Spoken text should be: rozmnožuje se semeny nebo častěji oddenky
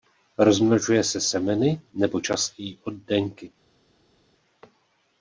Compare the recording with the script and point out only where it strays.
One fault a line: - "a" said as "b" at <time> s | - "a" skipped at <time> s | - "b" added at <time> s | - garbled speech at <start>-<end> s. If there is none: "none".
none